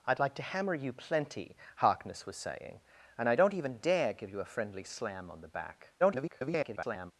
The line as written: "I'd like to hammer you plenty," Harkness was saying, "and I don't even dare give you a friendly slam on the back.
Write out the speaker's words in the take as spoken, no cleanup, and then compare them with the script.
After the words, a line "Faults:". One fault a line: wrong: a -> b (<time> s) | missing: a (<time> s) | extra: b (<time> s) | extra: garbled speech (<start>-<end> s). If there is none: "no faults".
"I'd like to hammer you plenty," Harkness was saying, "and I don't even dare give you a friendly slam on the back. [garbled]
Faults:
extra: garbled speech (6.0-7.1 s)